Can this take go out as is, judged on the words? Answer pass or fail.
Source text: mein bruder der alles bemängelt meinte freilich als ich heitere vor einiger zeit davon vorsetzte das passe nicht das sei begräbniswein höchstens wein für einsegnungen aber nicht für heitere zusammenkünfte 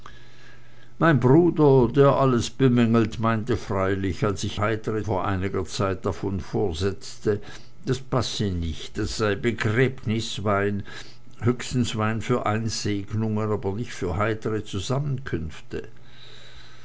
pass